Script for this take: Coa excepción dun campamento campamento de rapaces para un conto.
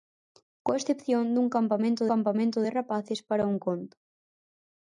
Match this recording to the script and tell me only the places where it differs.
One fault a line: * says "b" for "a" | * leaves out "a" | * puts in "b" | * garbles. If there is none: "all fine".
all fine